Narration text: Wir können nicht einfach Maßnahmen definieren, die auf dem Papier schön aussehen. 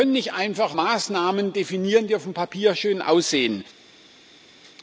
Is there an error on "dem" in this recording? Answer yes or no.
no